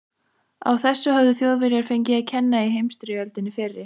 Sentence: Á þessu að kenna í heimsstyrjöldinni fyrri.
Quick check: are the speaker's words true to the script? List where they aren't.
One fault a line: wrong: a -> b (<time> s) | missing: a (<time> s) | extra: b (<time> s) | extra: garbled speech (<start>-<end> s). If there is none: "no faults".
extra: höfðu Þjóðverjar fengið (1.2 s)